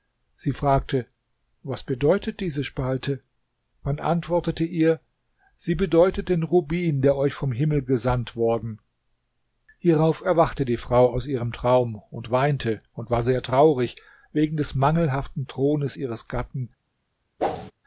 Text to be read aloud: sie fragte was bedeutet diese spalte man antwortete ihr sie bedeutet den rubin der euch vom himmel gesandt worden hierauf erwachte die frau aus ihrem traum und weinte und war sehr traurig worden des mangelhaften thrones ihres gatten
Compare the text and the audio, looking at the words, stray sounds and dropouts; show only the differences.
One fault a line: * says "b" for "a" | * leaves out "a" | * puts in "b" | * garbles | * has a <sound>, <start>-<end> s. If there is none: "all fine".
* says "wegen" for "worden"
* has a whoosh, 17.4-17.7 s